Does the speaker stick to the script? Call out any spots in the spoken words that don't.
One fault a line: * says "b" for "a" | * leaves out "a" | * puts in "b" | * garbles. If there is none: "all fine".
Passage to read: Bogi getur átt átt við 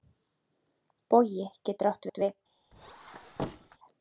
all fine